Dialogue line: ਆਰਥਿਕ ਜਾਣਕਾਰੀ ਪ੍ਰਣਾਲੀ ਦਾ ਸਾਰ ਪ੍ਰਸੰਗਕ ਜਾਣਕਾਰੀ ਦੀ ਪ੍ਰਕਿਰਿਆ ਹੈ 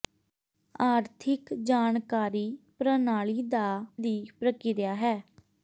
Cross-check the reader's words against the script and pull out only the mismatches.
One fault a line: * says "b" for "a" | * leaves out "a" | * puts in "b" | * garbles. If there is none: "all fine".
* leaves out "ਸਾਰ ਪ੍ਰਸੰਗਕ ਜਾਣਕਾਰੀ"